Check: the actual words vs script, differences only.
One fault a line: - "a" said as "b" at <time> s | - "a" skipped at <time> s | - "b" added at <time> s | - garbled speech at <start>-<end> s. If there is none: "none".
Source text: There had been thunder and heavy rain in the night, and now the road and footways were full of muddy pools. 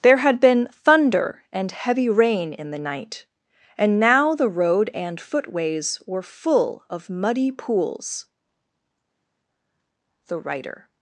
- "The writer" added at 10.3 s